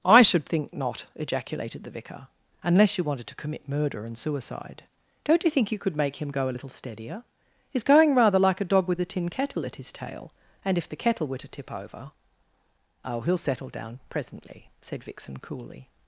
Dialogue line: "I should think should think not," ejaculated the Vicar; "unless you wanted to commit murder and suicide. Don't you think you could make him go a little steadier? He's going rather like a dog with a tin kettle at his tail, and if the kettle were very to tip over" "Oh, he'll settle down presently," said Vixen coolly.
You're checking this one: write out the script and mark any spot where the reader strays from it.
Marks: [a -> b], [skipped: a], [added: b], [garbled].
"I should think [skipped: should think] not," ejaculated the Vicar; "unless you wanted to commit murder and suicide. Don't you think you could make him go a little steadier? He's going rather like a dog with a tin kettle at his tail, and if the kettle were [skipped: very] to tip over" "Oh, he'll settle down presently," said Vixen coolly.